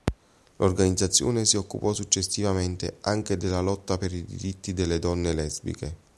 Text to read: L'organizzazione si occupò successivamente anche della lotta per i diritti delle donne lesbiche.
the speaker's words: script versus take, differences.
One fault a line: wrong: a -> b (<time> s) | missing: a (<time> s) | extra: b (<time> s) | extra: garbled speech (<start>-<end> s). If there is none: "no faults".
no faults